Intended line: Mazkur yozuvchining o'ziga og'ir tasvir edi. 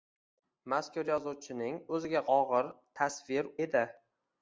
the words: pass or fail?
pass